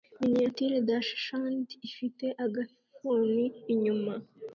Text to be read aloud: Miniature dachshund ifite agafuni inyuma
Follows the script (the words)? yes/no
yes